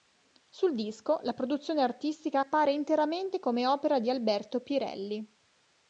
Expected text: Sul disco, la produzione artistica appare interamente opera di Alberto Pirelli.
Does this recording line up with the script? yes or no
no